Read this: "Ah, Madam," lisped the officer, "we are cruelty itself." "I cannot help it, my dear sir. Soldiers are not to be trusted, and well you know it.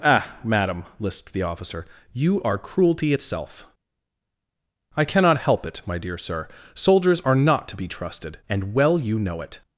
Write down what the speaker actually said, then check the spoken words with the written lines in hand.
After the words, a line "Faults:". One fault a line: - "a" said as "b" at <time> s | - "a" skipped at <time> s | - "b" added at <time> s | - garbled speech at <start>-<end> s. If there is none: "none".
"Ah, Madam," lisped the officer, "you are cruelty itself." "I cannot help it, my dear sir. Soldiers are not to be trusted, and well you know it.
Faults:
- "we" said as "you" at 2.1 s